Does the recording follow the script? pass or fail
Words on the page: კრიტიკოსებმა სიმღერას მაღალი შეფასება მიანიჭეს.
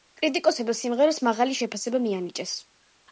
pass